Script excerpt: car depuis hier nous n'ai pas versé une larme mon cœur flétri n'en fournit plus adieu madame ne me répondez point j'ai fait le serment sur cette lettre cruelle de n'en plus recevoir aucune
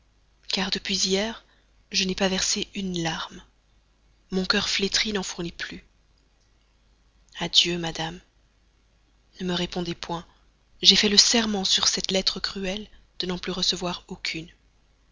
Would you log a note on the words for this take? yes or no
yes